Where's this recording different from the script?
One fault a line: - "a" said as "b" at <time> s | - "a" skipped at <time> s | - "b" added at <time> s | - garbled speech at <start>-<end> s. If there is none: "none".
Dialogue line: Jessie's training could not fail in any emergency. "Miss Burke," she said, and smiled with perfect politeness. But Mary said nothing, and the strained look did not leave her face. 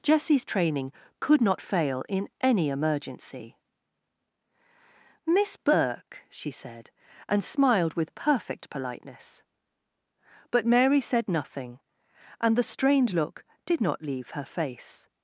none